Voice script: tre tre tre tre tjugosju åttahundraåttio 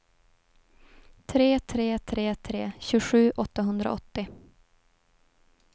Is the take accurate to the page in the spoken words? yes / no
yes